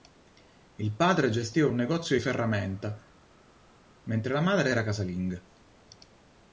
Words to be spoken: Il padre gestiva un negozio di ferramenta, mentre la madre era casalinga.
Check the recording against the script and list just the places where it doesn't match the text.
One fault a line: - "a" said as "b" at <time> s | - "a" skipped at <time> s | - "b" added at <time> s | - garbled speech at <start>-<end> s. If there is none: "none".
none